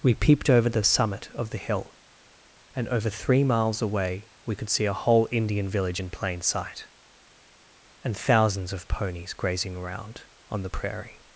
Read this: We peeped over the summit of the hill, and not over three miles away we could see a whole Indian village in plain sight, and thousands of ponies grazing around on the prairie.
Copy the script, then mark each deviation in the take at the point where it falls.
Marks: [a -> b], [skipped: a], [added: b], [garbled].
We peeped over the summit of the hill, and [skipped: not] over three miles away we could see a whole Indian village in plain sight, and thousands of ponies grazing around on the prairie.